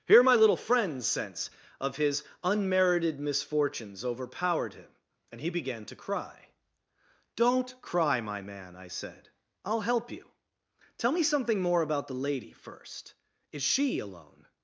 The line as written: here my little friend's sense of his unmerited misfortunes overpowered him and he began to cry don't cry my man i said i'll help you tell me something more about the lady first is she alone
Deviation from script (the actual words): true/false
false